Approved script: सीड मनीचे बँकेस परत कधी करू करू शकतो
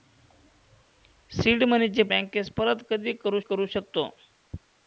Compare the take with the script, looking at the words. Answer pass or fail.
pass